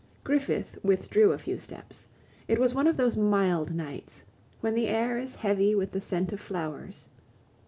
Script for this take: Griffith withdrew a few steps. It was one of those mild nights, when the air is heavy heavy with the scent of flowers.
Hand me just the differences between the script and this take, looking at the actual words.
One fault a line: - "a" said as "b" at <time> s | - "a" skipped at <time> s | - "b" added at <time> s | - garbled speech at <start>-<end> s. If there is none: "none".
- "heavy" skipped at 5.8 s